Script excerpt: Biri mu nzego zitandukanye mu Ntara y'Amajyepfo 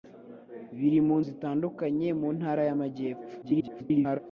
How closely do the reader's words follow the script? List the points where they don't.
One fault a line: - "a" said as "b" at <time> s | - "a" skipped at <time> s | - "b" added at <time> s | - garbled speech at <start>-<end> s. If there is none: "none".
- "nzego" skipped at 1.2 s
- garbled speech at 3.4-4.2 s